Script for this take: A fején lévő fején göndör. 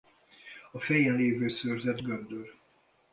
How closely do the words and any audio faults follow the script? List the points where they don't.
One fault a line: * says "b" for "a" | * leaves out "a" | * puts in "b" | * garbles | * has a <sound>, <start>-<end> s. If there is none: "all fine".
* says "szőrzet" for "fején"